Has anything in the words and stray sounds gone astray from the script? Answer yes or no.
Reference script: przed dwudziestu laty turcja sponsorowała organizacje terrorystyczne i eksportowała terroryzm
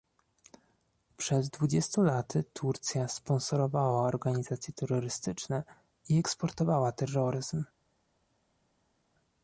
no